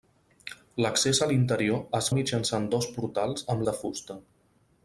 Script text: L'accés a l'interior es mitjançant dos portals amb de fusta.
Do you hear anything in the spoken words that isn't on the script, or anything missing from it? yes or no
no